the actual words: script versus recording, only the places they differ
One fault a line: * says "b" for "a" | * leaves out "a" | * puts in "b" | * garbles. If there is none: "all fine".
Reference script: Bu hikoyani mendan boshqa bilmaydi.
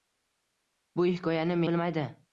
* leaves out "mendan boshqa"